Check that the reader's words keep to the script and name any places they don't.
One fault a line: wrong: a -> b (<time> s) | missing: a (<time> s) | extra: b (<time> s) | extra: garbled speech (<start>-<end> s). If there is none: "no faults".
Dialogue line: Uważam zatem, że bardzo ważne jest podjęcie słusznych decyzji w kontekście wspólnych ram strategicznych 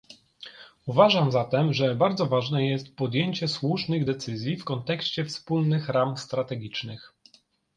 no faults